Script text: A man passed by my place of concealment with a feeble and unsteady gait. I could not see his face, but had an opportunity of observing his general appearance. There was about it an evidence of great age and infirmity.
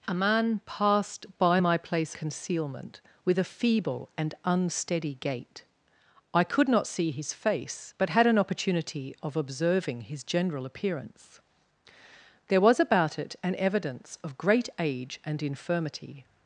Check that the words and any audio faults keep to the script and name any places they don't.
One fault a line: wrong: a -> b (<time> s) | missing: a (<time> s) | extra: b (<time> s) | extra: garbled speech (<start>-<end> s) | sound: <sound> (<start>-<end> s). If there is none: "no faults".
missing: of (2.1 s)